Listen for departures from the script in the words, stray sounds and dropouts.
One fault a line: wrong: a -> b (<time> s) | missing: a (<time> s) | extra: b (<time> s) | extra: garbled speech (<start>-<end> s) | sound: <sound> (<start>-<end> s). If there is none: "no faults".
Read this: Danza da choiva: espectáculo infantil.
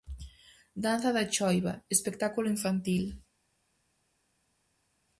no faults